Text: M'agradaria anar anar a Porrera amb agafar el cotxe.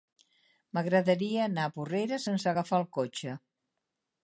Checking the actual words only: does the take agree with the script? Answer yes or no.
no